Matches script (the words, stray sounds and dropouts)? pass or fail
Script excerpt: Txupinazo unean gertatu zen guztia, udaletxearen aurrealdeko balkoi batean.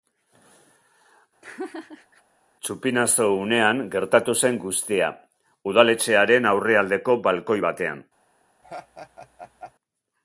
fail